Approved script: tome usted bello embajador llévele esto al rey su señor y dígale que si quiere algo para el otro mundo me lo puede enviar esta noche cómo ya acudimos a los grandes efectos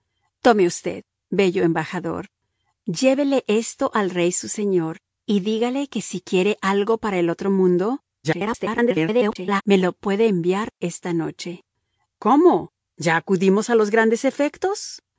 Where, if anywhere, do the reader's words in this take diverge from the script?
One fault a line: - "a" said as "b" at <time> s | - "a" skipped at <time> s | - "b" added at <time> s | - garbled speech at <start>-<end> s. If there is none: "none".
- garbled speech at 8.2-9.6 s